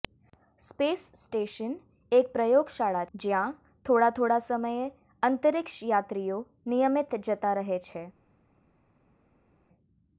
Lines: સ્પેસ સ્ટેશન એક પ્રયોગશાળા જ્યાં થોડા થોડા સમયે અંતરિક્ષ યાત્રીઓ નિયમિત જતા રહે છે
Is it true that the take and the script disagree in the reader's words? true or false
false